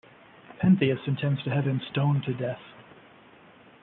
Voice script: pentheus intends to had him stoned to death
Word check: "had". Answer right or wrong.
wrong